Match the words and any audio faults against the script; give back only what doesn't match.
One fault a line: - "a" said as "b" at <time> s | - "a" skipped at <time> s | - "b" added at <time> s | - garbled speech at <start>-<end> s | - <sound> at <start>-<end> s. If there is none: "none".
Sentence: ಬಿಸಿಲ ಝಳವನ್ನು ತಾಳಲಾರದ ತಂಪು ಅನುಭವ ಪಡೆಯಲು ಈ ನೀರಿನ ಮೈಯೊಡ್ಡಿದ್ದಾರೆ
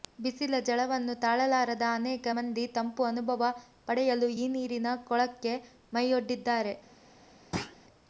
- "ಅನೇಕ ಮಂದಿ" added at 2.0 s
- "ಕೊಳಕ್ಕೆ" added at 5.1 s
- thud at 7.5-7.8 s